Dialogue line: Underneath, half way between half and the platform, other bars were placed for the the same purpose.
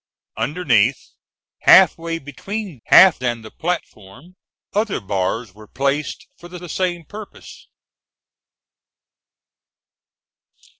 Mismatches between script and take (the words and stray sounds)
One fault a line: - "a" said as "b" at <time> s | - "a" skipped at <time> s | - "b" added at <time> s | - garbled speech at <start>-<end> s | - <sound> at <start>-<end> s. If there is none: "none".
none